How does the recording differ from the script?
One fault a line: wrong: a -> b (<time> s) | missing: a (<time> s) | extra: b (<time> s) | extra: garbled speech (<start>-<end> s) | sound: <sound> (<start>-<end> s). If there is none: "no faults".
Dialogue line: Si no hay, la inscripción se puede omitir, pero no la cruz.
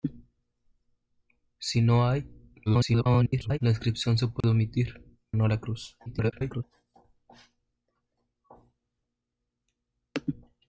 extra: garbled speech (2.7-3.6 s)
sound: dropout (4.4-4.4 s)
missing: pero (5.2 s)
extra: garbled speech (6.1-6.6 s)